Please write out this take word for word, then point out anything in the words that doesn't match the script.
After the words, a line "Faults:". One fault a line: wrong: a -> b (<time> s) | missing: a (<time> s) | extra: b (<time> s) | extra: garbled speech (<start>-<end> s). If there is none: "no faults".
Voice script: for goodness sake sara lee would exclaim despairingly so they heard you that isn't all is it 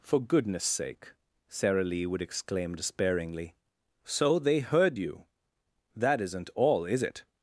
for goodness sake sara lee would exclaim despairingly so they heard you that isn't all is it
Faults:
no faults